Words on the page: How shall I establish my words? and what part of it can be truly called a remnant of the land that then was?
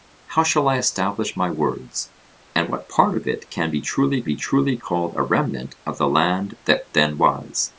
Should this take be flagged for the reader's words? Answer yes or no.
yes